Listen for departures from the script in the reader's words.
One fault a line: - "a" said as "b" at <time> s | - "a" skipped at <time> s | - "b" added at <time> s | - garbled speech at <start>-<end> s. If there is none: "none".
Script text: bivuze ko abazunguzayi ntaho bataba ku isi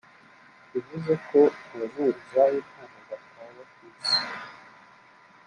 none